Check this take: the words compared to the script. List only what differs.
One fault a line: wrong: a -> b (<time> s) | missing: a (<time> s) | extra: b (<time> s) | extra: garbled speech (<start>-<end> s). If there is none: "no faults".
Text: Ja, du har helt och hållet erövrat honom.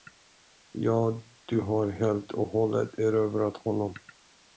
no faults